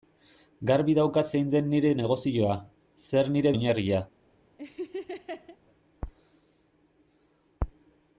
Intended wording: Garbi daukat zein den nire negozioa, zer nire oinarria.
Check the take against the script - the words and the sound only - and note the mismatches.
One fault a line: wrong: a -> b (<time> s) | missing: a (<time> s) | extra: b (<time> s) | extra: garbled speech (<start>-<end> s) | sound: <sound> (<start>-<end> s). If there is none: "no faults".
sound: laugh (4.6-5.6 s)